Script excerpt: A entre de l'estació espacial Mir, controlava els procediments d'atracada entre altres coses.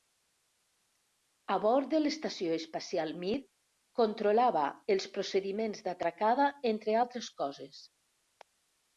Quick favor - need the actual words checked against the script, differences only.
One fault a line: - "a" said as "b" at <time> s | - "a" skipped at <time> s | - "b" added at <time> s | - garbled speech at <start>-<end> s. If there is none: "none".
- "entre" said as "bord" at 1.6 s